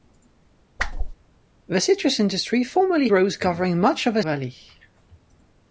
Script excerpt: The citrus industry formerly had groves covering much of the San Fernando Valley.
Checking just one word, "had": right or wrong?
wrong